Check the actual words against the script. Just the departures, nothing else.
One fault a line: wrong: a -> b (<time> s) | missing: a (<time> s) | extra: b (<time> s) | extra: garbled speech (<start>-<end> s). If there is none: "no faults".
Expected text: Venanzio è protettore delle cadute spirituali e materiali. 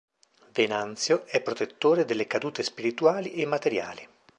no faults